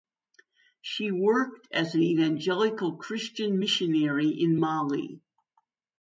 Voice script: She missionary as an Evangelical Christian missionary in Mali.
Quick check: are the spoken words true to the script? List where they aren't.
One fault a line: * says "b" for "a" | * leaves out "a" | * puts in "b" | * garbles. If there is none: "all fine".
* says "worked" for "missionary"